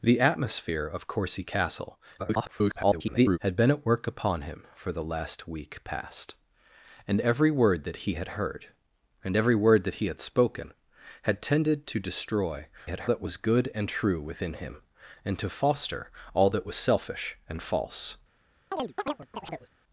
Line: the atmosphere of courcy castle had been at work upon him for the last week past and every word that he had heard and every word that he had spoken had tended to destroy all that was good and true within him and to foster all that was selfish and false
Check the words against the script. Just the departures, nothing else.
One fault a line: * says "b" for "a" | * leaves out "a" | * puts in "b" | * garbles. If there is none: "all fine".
* garbles
* says "had" for "all"